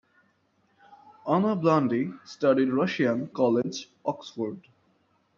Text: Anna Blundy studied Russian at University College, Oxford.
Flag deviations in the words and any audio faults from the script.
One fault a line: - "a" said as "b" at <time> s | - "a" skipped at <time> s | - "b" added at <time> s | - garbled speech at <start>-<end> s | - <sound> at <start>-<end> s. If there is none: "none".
- "at University" skipped at 3.3 s